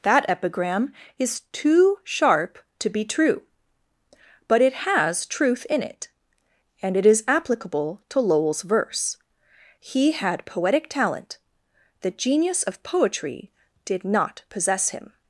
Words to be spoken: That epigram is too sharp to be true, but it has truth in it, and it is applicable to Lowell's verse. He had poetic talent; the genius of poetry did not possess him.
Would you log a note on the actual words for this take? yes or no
no